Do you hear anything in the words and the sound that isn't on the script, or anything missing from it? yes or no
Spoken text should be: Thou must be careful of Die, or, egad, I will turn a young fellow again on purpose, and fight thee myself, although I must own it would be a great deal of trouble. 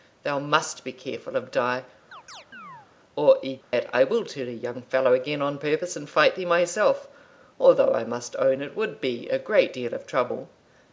yes